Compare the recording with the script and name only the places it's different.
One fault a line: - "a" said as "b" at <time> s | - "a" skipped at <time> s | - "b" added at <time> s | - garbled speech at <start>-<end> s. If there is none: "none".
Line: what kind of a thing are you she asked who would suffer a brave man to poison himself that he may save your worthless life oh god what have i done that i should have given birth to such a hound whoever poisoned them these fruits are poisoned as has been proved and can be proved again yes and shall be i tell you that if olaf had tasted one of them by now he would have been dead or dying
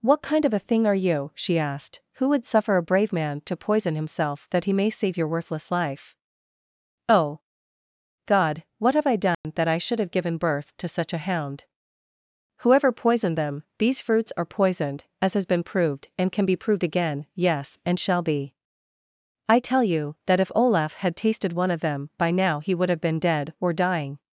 none